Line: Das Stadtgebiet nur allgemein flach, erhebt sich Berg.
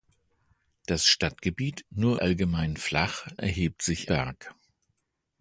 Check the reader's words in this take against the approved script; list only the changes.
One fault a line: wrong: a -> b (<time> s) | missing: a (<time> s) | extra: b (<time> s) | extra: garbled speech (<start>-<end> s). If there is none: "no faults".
no faults